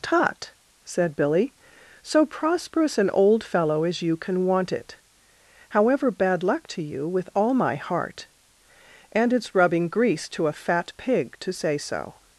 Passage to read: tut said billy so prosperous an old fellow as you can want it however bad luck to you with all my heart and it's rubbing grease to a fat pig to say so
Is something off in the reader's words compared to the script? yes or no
no